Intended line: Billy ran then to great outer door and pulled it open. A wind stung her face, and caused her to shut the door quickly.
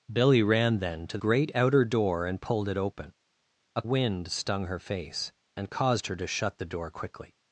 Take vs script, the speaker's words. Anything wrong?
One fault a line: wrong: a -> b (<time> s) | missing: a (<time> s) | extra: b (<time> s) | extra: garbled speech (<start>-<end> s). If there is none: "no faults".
no faults